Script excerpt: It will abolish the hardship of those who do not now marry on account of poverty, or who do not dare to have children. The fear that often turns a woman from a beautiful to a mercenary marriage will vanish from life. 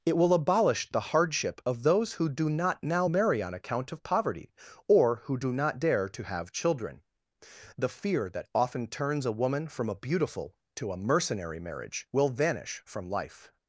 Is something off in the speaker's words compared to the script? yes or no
no